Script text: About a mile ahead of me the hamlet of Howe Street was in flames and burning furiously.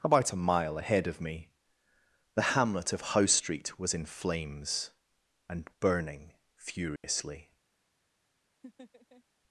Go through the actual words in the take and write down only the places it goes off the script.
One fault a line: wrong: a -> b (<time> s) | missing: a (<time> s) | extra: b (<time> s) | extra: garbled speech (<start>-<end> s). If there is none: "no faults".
no faults